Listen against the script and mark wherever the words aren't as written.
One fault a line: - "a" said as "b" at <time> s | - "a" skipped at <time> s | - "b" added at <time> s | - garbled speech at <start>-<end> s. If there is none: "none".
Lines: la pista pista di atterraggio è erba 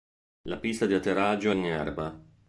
- "pista" skipped at 0.9 s
- "in" added at 1.5 s